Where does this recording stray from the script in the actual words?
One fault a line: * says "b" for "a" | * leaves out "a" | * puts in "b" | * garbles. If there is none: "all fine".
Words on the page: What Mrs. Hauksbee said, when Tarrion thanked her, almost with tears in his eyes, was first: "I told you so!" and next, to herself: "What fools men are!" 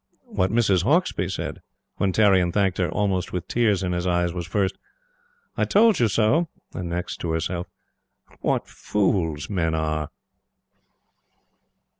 all fine